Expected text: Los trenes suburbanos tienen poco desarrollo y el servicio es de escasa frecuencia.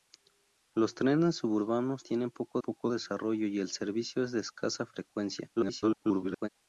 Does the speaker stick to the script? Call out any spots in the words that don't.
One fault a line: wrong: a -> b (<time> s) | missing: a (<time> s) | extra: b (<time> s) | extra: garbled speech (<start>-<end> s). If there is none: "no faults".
extra: poco (2.6 s)
extra: garbled speech (5.6-6.5 s)